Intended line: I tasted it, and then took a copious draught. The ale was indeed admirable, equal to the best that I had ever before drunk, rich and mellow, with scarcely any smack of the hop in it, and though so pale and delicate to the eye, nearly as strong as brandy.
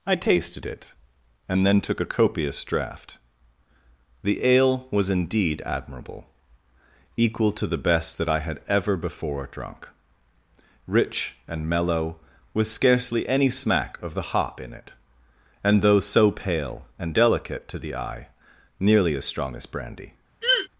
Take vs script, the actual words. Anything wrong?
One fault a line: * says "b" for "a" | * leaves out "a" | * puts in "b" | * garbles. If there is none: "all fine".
all fine